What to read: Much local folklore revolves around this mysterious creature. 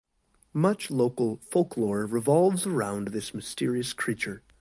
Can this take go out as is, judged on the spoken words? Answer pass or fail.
pass